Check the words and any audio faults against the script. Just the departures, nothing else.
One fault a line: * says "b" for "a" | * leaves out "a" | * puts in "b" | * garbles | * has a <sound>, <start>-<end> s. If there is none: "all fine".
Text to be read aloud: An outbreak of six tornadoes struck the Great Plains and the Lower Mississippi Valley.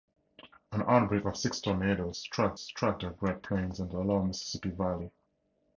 * puts in "struck"